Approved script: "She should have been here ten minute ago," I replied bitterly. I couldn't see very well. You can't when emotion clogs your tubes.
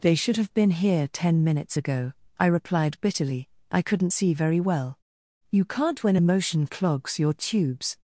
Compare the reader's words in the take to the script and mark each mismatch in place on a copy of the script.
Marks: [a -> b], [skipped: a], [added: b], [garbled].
["She -> They] should have been here ten [minute -> minutes] ago," I replied bitterly. I couldn't see very well. You can't when emotion clogs your tubes.